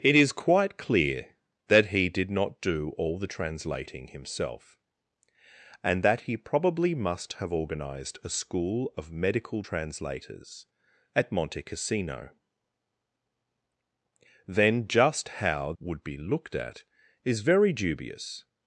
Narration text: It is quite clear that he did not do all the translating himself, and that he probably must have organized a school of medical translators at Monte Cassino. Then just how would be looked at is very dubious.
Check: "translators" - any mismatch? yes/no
no